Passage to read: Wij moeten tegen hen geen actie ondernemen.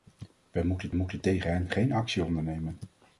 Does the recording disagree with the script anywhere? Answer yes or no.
yes